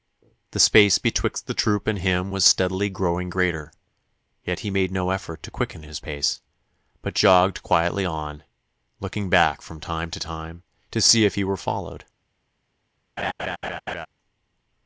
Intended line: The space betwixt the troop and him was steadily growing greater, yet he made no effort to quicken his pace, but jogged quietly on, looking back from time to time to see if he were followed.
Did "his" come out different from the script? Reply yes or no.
no